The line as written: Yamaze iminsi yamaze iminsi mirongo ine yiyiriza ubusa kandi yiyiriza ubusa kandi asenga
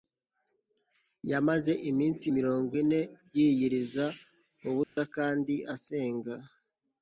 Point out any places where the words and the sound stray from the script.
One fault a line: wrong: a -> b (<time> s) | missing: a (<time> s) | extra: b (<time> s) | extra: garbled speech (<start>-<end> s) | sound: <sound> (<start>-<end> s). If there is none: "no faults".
missing: yamaze iminsi (2.2 s)
sound: dropout (4.8-5.0 s)
missing: yiyiriza ubusa kandi (5.5 s)